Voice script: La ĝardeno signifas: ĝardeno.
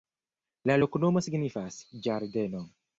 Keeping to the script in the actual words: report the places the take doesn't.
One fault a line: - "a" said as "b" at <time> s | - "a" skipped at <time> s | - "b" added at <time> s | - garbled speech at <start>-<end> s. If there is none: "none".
- "ĝardeno" said as "loknomo" at 0.8 s